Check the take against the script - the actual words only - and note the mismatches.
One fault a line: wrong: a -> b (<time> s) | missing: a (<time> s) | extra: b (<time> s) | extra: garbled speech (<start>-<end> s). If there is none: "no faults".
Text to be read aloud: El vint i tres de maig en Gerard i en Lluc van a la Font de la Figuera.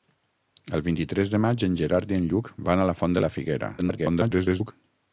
extra: garbled speech (3.8-4.7 s)